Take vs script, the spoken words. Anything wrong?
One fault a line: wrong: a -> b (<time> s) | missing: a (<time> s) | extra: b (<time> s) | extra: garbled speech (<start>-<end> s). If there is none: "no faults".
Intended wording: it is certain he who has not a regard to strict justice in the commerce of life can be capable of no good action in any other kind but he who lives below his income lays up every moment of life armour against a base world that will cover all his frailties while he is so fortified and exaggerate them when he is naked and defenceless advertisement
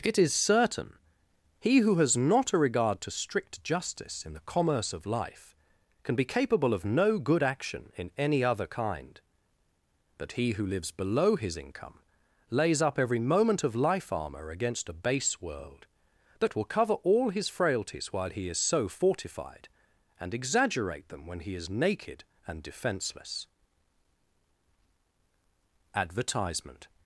no faults